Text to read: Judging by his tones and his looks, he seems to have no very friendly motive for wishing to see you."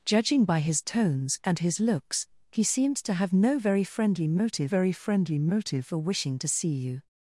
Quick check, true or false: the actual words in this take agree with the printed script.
false